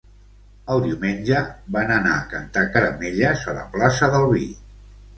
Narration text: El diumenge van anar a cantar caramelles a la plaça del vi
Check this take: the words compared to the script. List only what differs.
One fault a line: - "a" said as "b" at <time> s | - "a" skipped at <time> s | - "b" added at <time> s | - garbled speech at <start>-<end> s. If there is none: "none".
none